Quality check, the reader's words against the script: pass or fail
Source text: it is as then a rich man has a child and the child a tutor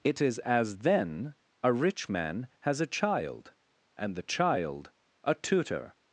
pass